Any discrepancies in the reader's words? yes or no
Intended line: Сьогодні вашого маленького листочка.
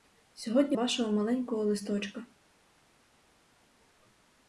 no